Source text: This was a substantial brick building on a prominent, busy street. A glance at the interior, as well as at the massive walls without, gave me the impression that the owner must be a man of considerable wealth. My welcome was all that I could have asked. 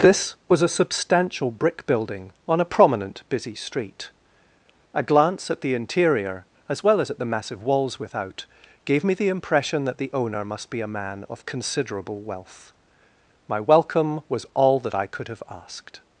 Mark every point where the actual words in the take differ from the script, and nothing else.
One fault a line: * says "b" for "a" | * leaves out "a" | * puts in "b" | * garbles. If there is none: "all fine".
all fine